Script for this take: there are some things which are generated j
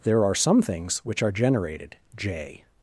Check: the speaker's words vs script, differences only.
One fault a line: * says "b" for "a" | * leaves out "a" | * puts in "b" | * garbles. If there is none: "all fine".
all fine